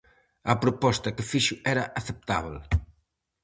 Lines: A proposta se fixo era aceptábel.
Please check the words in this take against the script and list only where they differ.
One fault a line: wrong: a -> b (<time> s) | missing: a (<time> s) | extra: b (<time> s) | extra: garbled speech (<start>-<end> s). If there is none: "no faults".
wrong: se -> que (1.1 s)